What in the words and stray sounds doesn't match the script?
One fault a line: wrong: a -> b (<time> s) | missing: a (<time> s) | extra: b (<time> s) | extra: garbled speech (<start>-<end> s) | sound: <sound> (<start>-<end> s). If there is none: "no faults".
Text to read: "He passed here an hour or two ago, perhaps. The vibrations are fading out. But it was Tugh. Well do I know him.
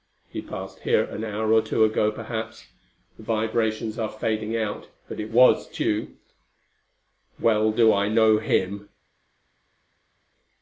no faults